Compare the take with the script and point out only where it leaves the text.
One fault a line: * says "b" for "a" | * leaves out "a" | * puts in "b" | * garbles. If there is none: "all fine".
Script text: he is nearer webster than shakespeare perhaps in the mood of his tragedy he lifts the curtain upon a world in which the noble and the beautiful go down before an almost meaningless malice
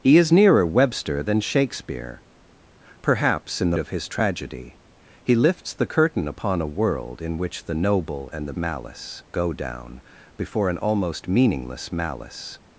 * leaves out "mood"
* says "malice" for "beautiful"